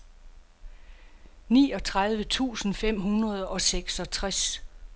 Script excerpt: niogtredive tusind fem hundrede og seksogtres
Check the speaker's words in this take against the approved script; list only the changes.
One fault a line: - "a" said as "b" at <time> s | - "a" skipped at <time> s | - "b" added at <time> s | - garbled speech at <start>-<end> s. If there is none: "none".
none